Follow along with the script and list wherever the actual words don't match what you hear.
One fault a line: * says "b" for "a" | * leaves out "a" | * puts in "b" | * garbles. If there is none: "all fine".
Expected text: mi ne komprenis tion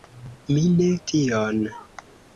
* leaves out "komprenis"